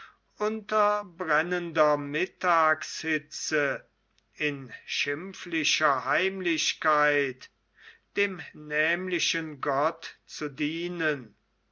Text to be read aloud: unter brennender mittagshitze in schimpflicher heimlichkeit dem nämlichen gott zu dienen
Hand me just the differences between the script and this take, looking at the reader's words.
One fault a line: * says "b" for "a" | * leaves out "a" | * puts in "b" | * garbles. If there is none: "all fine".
all fine